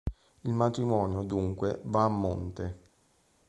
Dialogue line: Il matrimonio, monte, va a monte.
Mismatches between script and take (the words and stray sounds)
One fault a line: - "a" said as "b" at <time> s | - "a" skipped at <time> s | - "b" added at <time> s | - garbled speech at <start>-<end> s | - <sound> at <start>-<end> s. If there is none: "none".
- "monte" said as "dunque" at 1.2 s